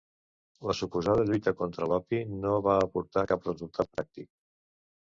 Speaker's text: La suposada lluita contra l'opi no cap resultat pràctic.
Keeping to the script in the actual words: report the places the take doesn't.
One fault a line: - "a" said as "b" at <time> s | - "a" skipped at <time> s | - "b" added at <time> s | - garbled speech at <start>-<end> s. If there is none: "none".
- "va aportar" added at 2.7 s